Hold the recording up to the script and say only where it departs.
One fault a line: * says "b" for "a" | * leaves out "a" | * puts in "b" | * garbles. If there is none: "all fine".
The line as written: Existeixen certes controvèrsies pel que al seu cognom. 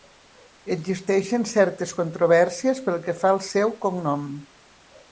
* puts in "fa"